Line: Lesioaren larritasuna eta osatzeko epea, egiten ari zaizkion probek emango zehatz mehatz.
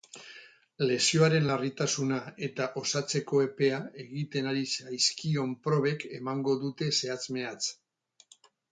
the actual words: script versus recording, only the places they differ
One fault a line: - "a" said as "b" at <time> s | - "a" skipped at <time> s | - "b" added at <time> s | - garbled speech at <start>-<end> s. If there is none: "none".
- "dute" added at 6.7 s